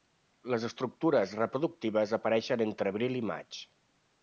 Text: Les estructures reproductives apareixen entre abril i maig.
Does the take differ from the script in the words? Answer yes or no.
no